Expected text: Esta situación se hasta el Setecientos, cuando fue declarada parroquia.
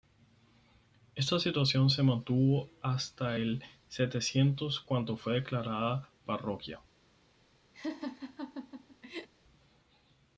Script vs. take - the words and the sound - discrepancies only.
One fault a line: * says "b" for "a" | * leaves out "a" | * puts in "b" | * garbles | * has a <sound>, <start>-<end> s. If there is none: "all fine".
* puts in "mantuvo"
* has a laugh, 7.7-9.3 s